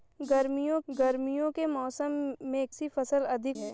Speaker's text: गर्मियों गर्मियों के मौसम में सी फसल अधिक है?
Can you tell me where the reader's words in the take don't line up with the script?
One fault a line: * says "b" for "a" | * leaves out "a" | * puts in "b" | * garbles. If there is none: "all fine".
all fine